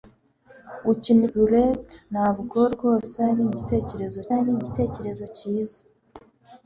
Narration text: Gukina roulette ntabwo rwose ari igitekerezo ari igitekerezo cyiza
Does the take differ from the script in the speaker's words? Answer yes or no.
no